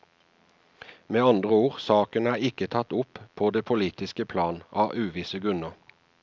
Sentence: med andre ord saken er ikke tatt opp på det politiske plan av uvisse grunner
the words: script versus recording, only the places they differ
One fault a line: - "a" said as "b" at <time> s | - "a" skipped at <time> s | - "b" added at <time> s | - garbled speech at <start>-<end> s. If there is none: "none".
none